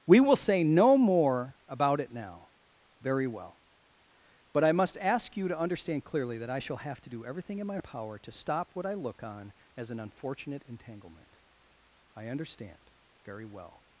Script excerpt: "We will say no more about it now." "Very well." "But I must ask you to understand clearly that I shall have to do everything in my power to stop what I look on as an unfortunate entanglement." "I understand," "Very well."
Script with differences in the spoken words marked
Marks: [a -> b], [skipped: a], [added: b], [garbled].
"We will say no more about it now." "Very well." "But I must ask you to understand clearly that I shall have to do everything in my power to stop what I look on as an unfortunate entanglement." "I understand," "Very well."